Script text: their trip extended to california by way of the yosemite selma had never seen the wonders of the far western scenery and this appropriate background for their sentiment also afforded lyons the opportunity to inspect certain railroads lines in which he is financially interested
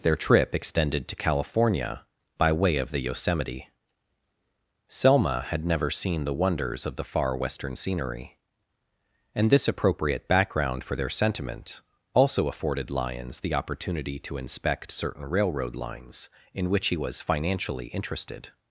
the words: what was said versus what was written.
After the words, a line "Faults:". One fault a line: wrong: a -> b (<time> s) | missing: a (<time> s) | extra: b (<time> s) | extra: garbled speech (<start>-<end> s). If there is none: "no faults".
their trip extended to california by way of the yosemite selma had never seen the wonders of the far western scenery and this appropriate background for their sentiment also afforded lyons the opportunity to inspect certain railroad lines in which he was financially interested
Faults:
wrong: railroads -> railroad (15.2 s)
wrong: is -> was (17.0 s)